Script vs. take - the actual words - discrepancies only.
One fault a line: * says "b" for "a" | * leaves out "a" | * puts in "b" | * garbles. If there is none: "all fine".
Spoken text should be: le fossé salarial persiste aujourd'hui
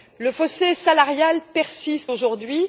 all fine